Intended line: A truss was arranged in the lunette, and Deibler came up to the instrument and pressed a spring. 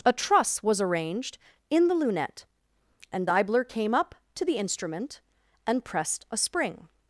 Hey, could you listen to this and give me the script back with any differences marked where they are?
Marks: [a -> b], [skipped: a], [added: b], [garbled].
A truss was arranged in the lunette, and Deibler came up to the instrument and pressed a spring.